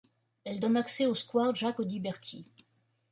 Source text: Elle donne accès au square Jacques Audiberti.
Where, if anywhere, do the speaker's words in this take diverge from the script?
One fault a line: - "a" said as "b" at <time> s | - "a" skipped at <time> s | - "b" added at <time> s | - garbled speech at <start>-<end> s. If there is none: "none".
none